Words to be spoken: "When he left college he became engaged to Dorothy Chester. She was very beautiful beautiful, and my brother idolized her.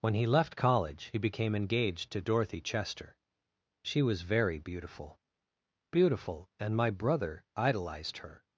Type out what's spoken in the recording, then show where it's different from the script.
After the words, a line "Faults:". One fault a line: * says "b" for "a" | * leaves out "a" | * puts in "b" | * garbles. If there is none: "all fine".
"When he left college he became engaged to Dorothy Chester. She was very beautiful beautiful, and my brother idolized her.
Faults:
all fine